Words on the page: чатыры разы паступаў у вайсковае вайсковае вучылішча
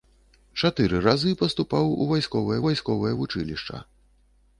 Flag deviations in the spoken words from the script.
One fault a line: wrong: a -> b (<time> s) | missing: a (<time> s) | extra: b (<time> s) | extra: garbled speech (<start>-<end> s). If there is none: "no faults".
no faults